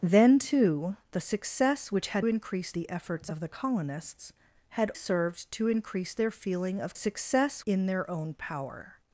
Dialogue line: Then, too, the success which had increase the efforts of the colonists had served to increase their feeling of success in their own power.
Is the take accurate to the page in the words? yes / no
yes